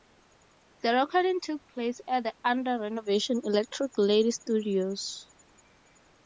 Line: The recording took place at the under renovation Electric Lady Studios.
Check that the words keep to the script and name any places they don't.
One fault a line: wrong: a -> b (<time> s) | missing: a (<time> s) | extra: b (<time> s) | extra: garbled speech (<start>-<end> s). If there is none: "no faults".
no faults